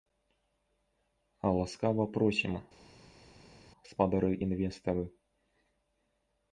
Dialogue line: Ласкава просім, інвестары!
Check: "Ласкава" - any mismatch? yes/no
no